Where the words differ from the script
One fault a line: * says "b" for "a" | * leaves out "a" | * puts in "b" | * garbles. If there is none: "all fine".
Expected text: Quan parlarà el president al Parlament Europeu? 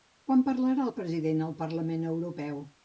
all fine